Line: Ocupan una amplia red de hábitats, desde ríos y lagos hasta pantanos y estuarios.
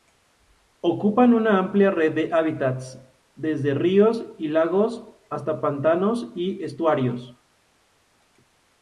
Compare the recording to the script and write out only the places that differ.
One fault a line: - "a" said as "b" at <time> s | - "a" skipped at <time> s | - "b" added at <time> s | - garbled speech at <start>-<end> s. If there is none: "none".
none